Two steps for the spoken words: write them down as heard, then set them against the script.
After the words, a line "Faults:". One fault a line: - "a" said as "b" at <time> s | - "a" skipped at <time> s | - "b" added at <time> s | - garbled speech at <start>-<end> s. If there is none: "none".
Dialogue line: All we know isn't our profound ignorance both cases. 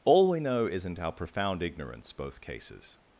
All we know isn't our profound ignorance both cases.
Faults:
none